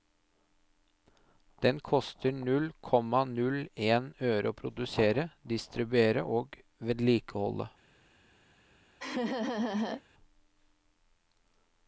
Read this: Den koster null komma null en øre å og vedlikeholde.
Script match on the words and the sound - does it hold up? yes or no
no